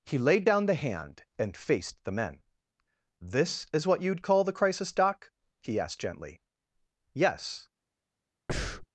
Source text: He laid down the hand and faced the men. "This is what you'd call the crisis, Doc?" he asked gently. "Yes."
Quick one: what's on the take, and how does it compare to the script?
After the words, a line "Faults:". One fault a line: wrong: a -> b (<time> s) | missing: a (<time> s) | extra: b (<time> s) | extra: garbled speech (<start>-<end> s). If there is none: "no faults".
He laid down the hand and faced the men. "This is what you'd call the crisis, Doc?" he asked gently. "Yes."
Faults:
no faults